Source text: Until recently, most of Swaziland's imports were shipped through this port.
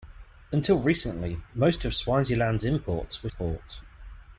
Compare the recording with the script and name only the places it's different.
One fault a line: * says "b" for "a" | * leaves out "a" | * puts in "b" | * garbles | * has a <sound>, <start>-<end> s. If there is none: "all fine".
* leaves out "shipped through this"